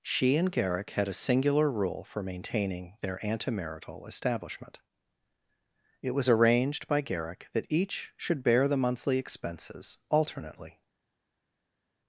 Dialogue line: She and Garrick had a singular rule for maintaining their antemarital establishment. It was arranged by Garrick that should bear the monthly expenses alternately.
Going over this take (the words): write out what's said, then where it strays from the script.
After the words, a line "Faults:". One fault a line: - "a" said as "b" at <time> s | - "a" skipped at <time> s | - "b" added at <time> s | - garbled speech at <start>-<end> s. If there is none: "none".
She and Garrick had a singular rule for maintaining their antemarital establishment. It was arranged by Garrick that each should bear the monthly expenses alternately.
Faults:
- "each" added at 7.7 s